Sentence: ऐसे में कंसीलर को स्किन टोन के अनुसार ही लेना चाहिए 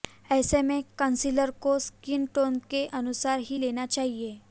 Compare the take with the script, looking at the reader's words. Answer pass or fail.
pass